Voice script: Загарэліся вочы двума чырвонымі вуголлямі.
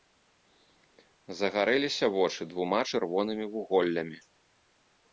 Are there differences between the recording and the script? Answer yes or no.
no